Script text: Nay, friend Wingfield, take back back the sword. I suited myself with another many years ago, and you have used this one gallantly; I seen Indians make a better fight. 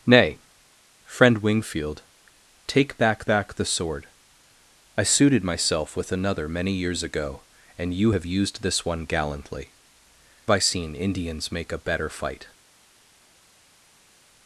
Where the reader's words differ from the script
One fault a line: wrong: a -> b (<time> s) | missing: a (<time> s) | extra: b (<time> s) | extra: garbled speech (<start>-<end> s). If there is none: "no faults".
no faults